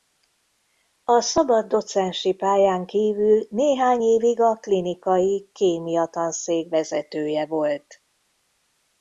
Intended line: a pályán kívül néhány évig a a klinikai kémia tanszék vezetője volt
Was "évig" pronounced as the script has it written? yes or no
yes